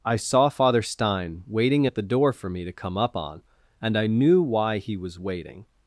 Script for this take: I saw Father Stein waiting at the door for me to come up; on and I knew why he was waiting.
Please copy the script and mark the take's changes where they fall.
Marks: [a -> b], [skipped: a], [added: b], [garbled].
I saw Father Stein waiting at the door for me to come up; on and I knew why he was waiting.